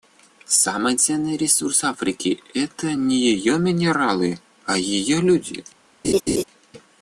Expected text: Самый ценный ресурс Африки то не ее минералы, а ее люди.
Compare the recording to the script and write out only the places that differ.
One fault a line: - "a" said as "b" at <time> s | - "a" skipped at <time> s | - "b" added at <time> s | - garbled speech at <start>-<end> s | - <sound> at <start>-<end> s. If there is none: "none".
- "то" said as "это" at 2.5 s
- laugh at 6.0-6.4 s